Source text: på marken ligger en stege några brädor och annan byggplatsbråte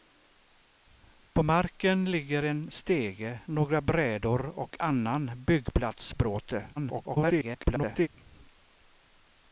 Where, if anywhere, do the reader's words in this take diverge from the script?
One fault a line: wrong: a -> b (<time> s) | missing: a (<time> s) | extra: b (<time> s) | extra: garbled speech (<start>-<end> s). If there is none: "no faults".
extra: garbled speech (6.8-8.1 s)